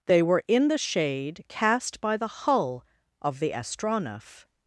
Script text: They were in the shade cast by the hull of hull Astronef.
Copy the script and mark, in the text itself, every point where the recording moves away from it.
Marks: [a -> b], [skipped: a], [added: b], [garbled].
They were in the shade cast by the hull of [hull -> the] Astronef.